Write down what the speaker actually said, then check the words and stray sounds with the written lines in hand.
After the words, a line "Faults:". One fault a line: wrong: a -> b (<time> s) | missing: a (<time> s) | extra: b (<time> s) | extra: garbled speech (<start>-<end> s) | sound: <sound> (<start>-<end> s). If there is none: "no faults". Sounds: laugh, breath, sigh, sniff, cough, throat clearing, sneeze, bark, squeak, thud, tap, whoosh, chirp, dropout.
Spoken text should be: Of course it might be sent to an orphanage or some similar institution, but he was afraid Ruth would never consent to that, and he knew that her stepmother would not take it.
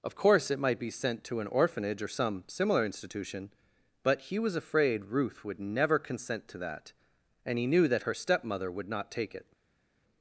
Of course it might be sent to an orphanage or some similar institution, but he was afraid Ruth would never consent to that, and he knew that her stepmother would not take it.
Faults:
no faults